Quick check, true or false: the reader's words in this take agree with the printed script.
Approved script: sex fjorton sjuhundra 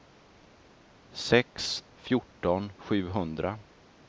true